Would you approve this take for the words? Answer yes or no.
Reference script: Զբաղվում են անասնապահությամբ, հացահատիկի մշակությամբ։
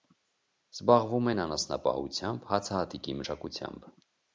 yes